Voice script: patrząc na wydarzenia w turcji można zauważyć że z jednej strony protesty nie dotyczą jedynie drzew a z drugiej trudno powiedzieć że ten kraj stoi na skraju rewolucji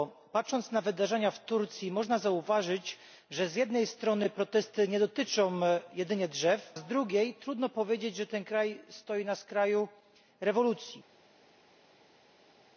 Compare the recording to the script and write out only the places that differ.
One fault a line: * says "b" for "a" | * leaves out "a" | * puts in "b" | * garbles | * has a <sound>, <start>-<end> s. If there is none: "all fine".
* leaves out "a"